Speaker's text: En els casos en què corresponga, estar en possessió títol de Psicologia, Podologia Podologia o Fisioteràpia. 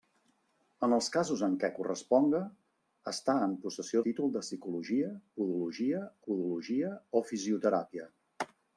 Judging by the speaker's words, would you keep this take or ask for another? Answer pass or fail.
pass